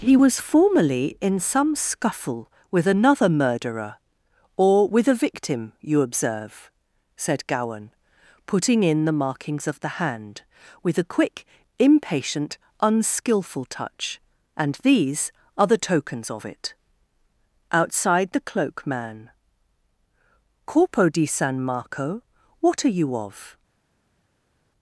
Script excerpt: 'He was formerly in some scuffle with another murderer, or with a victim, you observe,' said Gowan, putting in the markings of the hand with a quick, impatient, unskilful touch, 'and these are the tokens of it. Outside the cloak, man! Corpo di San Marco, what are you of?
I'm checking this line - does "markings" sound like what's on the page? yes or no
yes